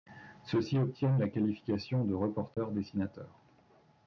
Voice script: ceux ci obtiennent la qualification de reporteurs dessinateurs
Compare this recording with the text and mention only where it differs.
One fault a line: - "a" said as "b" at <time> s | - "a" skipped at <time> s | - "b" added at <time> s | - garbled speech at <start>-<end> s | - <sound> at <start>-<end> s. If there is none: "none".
- dropout at 2.5-2.6 s